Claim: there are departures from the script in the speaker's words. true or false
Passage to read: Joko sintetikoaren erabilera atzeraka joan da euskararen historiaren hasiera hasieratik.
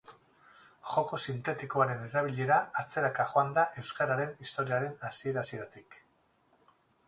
false